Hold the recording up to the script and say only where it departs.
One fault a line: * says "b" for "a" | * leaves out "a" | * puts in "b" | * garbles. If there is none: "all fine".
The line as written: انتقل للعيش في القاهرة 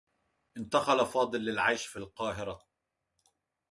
* puts in "فاضل"